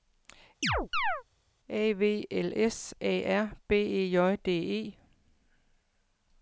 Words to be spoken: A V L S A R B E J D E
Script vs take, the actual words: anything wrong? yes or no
no